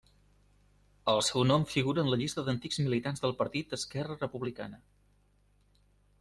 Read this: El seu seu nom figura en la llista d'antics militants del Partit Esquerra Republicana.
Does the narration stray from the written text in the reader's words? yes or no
yes